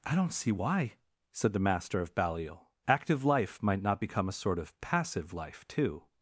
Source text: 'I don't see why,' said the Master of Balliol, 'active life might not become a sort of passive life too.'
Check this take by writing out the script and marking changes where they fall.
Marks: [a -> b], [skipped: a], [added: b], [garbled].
'I don't see why,' said the Master of Balliol, 'active life might not become a sort of passive life too.'